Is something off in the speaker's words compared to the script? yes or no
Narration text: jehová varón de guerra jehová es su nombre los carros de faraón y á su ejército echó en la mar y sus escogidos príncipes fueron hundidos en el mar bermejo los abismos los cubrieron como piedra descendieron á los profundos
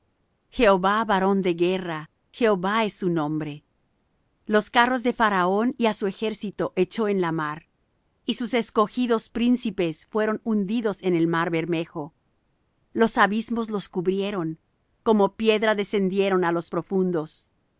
no